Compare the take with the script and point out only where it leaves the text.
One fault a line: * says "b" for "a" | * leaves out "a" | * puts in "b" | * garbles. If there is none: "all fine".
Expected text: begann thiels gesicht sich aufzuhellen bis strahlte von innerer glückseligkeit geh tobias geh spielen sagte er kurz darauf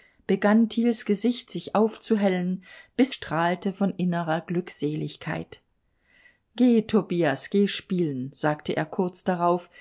all fine